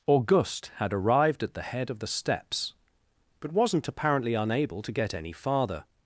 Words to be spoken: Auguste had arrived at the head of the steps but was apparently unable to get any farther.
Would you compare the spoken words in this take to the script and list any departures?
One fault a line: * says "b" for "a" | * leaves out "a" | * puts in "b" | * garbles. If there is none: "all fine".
* says "wasn't" for "was"